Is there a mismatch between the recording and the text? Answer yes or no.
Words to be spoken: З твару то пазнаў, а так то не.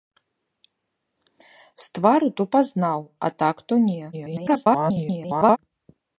yes